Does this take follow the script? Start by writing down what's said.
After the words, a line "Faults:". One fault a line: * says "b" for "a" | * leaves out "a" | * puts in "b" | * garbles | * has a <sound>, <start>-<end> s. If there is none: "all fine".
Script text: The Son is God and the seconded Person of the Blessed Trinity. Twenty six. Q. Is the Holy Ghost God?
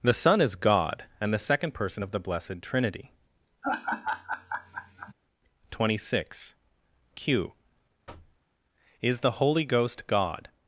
The Son is God and the second Person of the Blessed Trinity. Twenty six. Q. Is the Holy Ghost God?
Faults:
* says "second" for "seconded"
* has a laugh, 3.6-5.1 s
* has a thud, 8.1-8.4 s